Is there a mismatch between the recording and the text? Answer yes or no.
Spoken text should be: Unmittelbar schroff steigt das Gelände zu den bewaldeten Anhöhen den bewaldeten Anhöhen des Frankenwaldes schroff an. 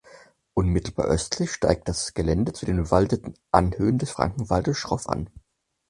yes